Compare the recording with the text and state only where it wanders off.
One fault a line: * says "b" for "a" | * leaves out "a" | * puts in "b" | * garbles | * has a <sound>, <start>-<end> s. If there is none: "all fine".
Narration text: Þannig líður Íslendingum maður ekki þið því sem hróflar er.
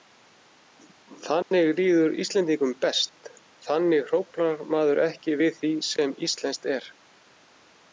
* has a dropout, 1.4-1.5 s
* puts in "best þannig hróflar"
* says "við" for "þið"
* says "íslenskt" for "hróflar"